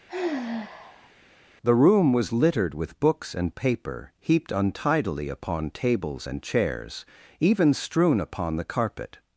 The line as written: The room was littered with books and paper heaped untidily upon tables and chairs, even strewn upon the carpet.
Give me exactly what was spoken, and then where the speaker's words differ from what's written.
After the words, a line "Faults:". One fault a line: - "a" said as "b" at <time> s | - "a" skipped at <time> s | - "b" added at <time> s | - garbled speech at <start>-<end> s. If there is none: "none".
The room was littered with books and paper heaped untidily upon tables and chairs, even strewn upon the carpet.
Faults:
none